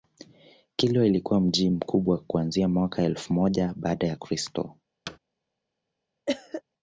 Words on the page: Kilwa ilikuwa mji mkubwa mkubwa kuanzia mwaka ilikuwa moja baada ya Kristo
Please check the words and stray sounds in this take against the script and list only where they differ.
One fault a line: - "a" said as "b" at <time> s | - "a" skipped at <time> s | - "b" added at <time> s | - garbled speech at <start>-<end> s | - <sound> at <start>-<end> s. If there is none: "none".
- "mkubwa" skipped at 2.2 s
- "ilikuwa" said as "elfu" at 3.0 s
- thud at 5.1-5.2 s
- cough at 6.3-6.6 s